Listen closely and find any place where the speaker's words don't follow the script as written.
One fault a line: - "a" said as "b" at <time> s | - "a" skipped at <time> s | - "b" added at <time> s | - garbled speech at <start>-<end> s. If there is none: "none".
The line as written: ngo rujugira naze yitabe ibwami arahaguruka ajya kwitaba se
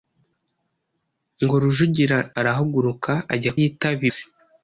- "naze yitabe ibwami" skipped at 2.2 s
- "kwitaba" said as "yitabe" at 3.6 s